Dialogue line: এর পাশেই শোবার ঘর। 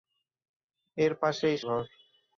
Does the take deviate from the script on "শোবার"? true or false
true